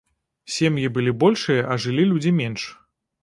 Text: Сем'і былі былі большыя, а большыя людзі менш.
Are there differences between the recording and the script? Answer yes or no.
yes